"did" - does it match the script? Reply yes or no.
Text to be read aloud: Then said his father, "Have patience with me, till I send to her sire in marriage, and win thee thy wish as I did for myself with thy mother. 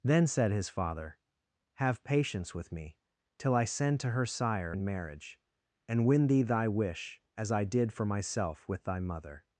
yes